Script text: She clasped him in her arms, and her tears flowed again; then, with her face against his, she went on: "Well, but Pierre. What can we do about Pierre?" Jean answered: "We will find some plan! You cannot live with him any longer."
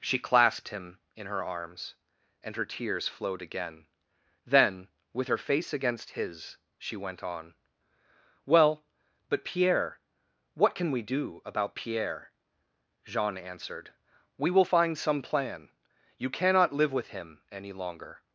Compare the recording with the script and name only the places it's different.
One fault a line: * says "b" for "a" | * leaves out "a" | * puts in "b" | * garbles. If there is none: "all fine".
all fine